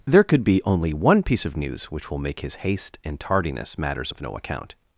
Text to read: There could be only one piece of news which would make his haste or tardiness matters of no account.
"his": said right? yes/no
yes